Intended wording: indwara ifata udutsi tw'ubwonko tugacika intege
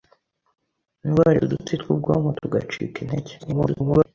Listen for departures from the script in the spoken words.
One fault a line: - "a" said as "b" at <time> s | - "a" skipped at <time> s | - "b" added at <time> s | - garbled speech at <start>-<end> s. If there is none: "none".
- "ifata" skipped at 1.4 s
- garbled speech at 3.4-4.1 s